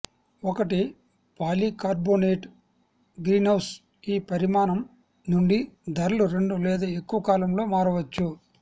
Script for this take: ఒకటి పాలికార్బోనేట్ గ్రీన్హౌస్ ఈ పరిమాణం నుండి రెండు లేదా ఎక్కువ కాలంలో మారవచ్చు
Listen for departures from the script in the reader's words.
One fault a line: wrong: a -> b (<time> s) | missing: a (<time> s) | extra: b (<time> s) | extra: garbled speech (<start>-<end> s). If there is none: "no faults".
extra: ధరలు (5.9 s)